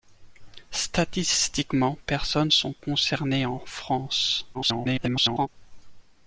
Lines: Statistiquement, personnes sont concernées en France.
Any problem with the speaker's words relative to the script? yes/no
yes